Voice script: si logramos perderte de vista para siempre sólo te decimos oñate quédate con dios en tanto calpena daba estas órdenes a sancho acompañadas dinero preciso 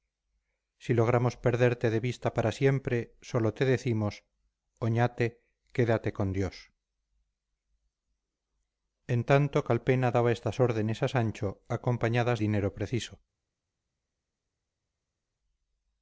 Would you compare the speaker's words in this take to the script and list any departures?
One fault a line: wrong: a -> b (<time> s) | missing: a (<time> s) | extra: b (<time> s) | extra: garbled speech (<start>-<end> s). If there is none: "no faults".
no faults